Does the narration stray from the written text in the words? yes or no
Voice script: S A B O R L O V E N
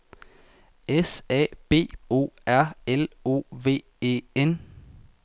no